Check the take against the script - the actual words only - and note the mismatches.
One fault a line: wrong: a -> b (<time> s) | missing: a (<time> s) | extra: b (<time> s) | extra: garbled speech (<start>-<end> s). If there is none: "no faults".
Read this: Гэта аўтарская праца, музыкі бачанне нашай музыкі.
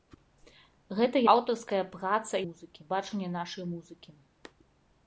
no faults